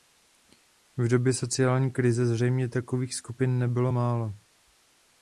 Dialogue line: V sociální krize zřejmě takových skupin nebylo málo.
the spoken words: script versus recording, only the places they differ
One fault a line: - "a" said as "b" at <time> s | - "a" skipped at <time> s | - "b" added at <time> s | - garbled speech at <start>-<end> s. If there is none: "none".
- "době" added at 1.1 s